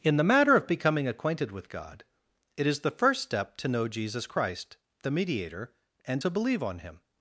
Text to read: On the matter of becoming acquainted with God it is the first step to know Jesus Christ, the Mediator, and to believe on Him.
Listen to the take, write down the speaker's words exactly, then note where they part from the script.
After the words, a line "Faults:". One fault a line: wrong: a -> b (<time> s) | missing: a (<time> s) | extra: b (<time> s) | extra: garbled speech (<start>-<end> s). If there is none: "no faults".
In the matter of becoming acquainted with God it is the first step to know Jesus Christ, the Mediator, and to believe on Him.
Faults:
wrong: On -> In (0.0 s)